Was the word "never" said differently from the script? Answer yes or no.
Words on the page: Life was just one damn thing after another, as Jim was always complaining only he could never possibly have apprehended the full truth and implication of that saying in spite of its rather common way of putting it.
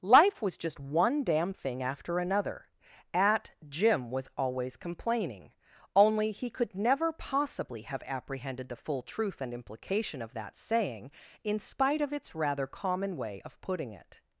no